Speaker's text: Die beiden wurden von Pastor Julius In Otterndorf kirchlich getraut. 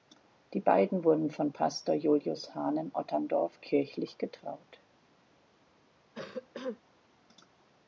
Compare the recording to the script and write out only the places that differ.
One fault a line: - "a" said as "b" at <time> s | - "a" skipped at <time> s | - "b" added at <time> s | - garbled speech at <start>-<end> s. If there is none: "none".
- "Hahn" added at 2.5 s